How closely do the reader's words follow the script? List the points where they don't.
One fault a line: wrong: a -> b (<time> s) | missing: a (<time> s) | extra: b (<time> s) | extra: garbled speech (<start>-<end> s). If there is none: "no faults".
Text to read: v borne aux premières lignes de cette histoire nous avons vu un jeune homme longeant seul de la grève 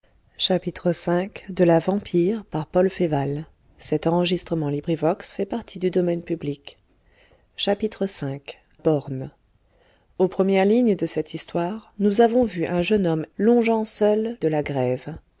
no faults